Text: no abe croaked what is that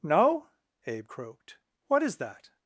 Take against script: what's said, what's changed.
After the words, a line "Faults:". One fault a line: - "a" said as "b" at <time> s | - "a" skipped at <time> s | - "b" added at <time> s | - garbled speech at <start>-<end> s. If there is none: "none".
no abe croaked what is that
Faults:
none